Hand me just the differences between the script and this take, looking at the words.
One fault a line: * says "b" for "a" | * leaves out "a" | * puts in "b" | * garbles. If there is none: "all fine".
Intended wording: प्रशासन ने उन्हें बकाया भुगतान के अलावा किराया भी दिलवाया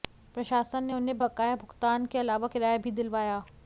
all fine